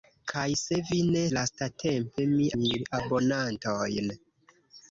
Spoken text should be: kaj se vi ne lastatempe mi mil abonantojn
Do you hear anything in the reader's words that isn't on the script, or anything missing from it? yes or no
no